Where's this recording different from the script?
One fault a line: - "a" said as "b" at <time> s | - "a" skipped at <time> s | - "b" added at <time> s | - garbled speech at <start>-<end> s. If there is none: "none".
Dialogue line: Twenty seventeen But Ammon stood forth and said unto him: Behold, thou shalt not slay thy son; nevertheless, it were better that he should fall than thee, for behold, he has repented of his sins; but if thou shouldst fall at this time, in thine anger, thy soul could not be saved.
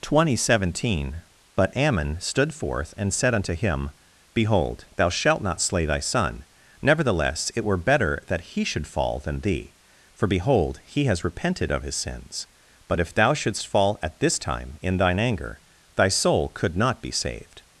none